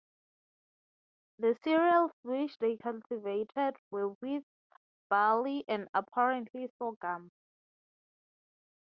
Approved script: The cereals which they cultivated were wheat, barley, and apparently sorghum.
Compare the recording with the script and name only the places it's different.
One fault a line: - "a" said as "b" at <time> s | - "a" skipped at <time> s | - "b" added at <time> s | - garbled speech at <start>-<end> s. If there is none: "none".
none